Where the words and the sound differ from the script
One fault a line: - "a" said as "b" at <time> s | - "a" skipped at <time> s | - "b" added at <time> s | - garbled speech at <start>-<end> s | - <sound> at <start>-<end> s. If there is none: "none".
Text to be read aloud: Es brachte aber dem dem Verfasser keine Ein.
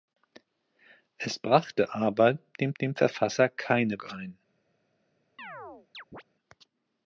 - chirp at 5.4-6.2 s